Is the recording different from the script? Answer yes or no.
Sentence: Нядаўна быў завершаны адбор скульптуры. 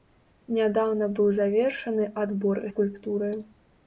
no